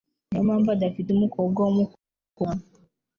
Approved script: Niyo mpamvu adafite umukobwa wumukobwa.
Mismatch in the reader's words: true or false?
false